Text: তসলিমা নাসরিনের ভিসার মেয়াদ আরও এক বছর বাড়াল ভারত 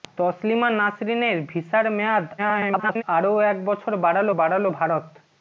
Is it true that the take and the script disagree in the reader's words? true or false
true